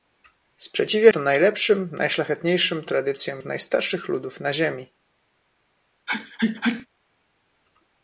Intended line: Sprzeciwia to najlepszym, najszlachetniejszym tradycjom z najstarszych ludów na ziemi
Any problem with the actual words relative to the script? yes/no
no